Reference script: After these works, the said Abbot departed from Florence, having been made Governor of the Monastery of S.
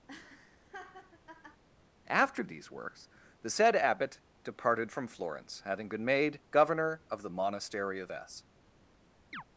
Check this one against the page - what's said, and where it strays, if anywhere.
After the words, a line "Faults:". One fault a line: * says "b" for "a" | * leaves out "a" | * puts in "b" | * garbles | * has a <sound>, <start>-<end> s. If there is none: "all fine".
After these works, the said Abbot departed from Florence, having been made Governor of the Monastery of S.
Faults:
* has a laugh, 0.1-1.6 s
* has a chirp, 9.3-9.4 s